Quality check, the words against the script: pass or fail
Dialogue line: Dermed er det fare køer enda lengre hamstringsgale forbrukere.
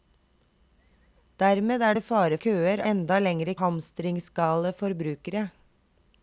pass